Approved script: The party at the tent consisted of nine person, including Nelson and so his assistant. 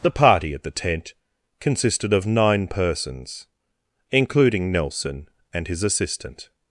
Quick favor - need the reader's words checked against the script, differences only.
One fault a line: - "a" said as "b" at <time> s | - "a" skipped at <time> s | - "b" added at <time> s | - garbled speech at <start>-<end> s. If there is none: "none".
- "person" said as "persons" at 2.7 s
- "so" skipped at 5.7 s